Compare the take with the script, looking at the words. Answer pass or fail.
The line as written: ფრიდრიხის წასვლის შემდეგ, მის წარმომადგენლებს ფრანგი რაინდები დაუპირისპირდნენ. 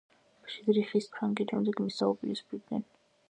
fail